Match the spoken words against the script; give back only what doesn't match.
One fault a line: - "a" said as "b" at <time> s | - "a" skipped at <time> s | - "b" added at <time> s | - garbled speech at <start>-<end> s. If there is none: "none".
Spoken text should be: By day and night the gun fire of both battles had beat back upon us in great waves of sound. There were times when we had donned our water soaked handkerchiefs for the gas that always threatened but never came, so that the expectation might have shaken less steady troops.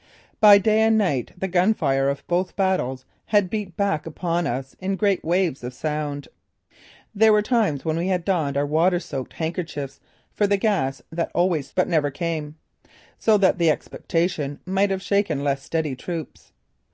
- "threatened" skipped at 11.7 s